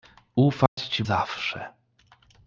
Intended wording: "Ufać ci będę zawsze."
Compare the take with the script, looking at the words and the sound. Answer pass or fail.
fail